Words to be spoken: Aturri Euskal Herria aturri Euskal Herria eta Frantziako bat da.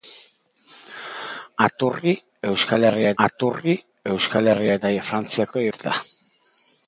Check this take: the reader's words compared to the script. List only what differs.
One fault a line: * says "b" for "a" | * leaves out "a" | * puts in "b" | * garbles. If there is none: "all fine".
all fine